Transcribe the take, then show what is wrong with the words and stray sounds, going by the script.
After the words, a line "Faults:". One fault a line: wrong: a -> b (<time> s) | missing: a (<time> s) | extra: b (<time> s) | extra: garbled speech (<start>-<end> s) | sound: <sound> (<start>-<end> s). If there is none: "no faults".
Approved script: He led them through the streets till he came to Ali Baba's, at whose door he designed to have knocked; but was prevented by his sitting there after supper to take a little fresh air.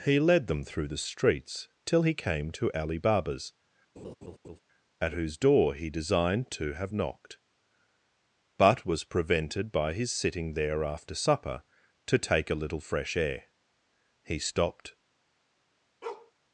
He led them through the streets till he came to Ali Baba's, at whose door he designed to have knocked; but was prevented by his sitting there after supper to take a little fresh air. He stopped
Faults:
sound: laugh (4.0-4.6 s)
extra: He stopped (14.2 s)
sound: bark (16.0-16.3 s)